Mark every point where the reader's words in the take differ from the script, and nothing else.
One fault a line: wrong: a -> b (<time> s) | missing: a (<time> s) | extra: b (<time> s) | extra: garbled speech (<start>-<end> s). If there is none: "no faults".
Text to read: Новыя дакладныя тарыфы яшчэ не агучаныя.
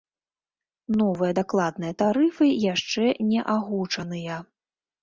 no faults